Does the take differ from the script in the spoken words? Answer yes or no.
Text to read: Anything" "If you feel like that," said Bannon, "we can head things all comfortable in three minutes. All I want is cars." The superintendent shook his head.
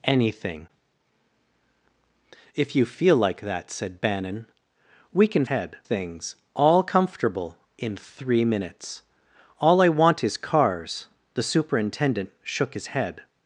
no